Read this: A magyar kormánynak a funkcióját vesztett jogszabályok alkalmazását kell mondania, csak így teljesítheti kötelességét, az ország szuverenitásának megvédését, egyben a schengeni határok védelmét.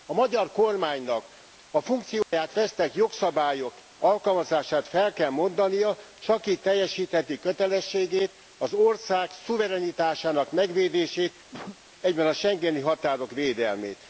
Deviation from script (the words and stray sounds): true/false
true